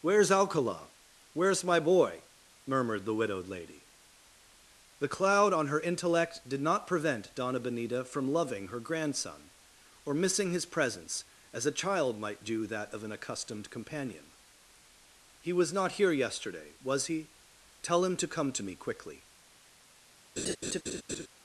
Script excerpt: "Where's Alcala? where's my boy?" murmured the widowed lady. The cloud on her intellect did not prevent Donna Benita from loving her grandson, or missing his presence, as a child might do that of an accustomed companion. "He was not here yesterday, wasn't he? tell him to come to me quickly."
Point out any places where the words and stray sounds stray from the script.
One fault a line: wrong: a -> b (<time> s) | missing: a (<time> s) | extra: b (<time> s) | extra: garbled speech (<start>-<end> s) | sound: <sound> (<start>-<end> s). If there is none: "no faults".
wrong: wasn't -> was (16.8 s)
sound: laugh (20.4-21.3 s)